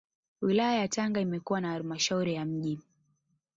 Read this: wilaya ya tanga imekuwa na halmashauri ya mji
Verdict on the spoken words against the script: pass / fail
pass